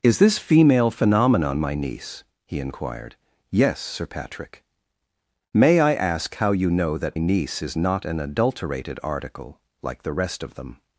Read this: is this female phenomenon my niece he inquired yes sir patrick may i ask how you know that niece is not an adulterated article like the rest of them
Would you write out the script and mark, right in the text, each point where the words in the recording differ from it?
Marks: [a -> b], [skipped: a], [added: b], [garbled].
is this female phenomenon my niece he inquired yes sir patrick may i ask how you know that niece is not an adulterated article like the rest of them